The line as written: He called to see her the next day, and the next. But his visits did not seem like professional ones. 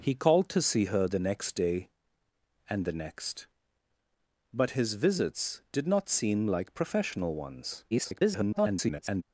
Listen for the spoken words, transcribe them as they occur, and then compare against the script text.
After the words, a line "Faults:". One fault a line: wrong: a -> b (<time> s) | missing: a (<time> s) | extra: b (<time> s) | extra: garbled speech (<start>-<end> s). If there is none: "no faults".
He called to see her the next day, and the next. But his visits did not seem like professional ones. [garbled]
Faults:
extra: garbled speech (7.9-9.2 s)